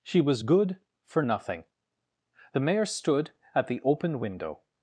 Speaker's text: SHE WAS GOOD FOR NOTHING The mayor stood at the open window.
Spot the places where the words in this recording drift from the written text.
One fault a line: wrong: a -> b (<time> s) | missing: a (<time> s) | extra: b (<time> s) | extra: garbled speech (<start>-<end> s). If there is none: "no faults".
no faults